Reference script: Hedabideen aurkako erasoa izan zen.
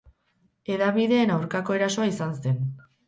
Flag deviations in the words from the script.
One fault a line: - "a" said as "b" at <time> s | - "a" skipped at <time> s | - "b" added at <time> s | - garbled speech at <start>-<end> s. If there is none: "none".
none